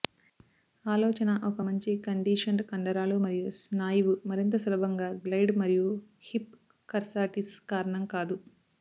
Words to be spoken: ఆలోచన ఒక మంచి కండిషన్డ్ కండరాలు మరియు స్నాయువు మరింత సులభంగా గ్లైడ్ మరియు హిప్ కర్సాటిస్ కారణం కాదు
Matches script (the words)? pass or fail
pass